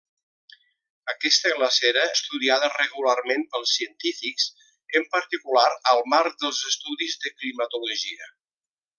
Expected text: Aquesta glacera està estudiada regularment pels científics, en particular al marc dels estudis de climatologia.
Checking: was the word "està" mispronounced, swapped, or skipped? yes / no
yes